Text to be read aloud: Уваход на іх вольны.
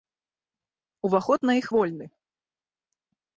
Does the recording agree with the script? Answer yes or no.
yes